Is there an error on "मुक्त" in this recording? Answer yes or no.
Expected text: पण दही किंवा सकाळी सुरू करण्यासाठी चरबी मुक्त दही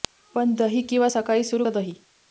yes